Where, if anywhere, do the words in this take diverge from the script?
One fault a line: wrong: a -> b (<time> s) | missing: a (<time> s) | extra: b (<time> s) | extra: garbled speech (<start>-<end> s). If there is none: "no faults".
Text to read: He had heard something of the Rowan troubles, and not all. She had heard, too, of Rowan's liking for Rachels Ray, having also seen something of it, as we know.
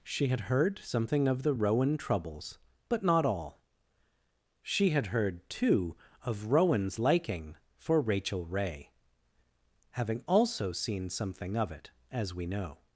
wrong: He -> She (0.0 s)
wrong: and -> but (2.9 s)
wrong: Rachels -> Rachel (8.0 s)